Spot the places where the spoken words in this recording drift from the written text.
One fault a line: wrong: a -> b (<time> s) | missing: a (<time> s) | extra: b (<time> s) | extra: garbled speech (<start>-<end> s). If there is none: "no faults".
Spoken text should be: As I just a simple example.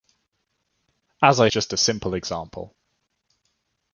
no faults